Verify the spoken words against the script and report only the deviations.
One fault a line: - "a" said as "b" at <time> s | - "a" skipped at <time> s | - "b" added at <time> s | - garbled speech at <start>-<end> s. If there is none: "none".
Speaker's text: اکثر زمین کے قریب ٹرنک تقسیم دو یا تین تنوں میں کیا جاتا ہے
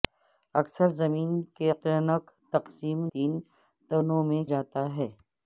- "قریب" skipped at 1.7 s
- "دو یا" skipped at 3.0 s
- "کیا" skipped at 4.4 s